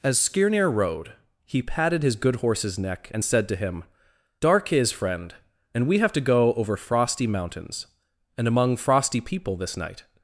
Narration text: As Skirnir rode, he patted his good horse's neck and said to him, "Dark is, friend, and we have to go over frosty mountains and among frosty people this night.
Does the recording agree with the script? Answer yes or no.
yes